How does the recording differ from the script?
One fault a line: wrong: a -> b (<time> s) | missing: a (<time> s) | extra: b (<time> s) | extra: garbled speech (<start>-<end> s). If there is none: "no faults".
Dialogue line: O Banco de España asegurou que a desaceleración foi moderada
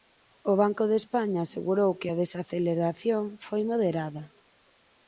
no faults